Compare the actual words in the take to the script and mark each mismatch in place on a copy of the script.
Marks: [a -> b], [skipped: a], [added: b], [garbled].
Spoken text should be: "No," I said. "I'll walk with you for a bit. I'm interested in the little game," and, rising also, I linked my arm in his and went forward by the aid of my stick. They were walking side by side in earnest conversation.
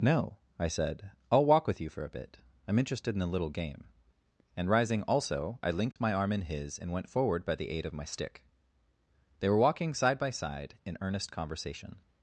"No," I said. "I'll walk with you for a bit. I'm interested in [the -> a] little game," and, rising also, I linked my arm in his and went forward by the aid of my stick. They were walking side by side in earnest conversation.